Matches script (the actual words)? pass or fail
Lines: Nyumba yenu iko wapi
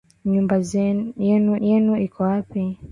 fail